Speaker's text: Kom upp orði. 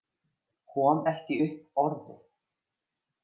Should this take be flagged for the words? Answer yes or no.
yes